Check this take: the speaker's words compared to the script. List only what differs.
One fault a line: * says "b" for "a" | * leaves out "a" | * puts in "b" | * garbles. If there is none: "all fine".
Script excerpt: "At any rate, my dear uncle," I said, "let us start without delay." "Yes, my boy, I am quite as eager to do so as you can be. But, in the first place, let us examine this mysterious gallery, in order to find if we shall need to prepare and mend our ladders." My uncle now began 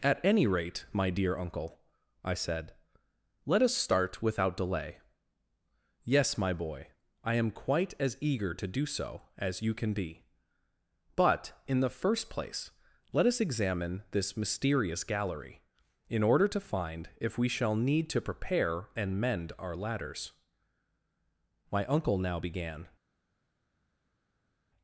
all fine